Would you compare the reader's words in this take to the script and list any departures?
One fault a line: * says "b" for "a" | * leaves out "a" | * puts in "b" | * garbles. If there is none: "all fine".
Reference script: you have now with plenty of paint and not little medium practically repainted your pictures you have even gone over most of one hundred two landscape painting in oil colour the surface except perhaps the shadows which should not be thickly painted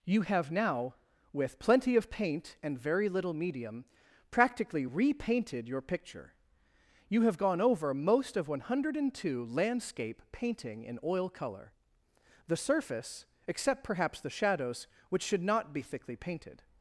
* says "very" for "not"
* says "picture" for "pictures"
* leaves out "even"